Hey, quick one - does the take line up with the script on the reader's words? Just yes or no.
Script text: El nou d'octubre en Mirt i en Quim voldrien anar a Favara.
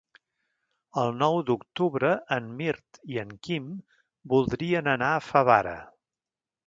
yes